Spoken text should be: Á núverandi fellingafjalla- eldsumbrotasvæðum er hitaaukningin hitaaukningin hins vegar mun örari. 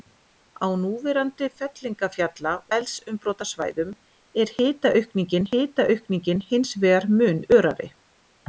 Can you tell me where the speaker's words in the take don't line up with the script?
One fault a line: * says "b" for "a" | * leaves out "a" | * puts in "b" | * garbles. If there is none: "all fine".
all fine